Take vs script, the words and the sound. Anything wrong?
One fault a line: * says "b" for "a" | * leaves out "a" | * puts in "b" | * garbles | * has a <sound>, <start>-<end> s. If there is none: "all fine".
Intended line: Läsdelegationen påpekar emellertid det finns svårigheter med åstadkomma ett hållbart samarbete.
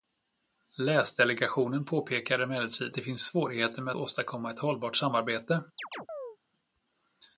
* has a chirp, 5.8-6.4 s